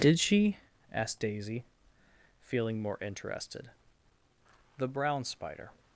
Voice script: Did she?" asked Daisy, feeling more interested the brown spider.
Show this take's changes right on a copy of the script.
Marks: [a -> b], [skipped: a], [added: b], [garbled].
Did she?" asked Daisy, feeling more interested the brown spider.